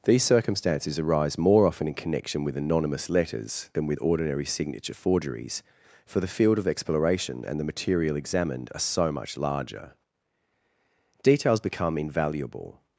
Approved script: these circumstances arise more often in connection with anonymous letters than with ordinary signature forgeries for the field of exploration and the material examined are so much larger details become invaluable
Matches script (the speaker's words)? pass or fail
pass